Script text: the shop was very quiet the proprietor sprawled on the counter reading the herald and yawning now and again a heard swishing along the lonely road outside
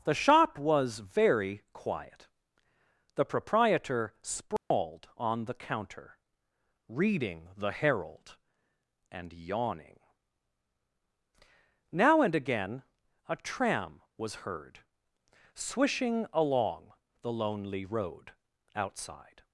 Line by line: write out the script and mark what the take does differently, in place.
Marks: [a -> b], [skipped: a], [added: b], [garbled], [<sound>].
the shop was very quiet the proprietor sprawled [dropout] on the counter reading the herald and yawning now and again a [added: tram was] heard swishing along the lonely road outside